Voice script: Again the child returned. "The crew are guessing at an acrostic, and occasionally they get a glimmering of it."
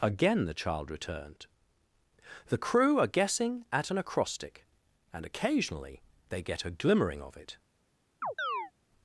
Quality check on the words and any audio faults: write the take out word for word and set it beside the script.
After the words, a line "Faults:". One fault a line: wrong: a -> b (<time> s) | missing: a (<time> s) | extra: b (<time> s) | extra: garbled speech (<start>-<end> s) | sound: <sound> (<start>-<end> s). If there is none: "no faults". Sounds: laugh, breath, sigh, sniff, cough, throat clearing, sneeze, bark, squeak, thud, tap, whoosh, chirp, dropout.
Again the child returned. "The crew are guessing at an acrostic, and occasionally they get a glimmering of it."
Faults:
sound: chirp (8.2-8.7 s)